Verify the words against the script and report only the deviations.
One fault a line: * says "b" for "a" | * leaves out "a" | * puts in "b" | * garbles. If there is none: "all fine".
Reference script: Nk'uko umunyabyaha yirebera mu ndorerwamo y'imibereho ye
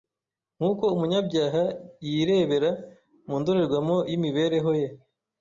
all fine